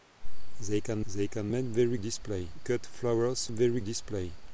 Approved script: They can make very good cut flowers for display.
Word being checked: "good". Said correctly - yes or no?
no